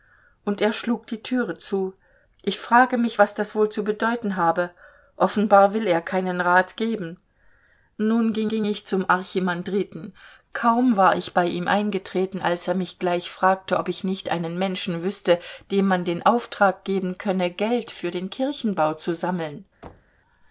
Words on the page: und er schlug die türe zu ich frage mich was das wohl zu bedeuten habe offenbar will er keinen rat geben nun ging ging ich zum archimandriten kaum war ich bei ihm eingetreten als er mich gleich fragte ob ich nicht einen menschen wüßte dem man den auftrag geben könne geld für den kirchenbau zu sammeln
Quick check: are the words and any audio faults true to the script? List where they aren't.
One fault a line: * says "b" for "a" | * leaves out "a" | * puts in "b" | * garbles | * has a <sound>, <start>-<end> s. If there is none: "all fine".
* has a thud, 19.8-20.2 s